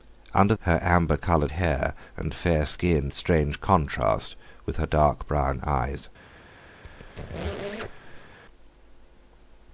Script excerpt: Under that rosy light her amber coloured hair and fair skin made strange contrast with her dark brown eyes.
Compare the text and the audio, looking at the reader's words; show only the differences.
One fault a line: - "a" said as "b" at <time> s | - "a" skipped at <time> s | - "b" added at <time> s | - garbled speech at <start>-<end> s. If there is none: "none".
- "that rosy light" skipped at 0.6 s
- "made" skipped at 3.1 s